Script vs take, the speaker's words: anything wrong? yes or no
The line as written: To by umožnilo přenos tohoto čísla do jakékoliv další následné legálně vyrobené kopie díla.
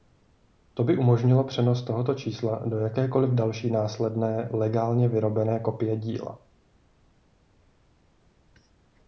no